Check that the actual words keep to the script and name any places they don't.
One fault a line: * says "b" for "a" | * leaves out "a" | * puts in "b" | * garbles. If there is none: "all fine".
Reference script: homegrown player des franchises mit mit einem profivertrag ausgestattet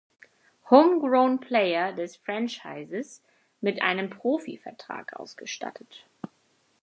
* leaves out "mit"